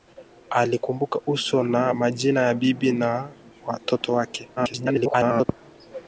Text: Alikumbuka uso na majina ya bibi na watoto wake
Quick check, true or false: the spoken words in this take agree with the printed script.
false